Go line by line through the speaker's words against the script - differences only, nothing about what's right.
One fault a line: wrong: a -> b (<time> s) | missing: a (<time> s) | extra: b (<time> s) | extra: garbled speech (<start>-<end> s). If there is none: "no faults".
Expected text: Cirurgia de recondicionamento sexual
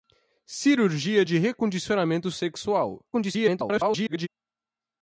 extra: garbled speech (3.1-4.3 s)